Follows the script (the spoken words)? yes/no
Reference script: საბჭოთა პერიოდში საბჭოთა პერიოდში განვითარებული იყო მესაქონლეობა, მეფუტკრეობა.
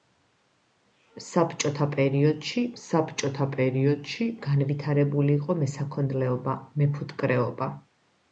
yes